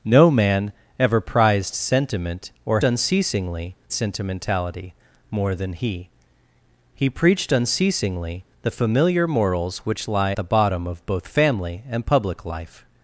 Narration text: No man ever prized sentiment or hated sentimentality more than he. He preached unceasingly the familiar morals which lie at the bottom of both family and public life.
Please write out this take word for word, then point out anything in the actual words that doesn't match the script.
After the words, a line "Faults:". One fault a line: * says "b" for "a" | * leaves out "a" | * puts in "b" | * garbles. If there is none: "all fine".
No man ever prized sentiment or unceasingly sentimentality more than he. He preached unceasingly the familiar morals which lie the bottom of both family and public life.
Faults:
* says "unceasingly" for "hated"
* leaves out "at"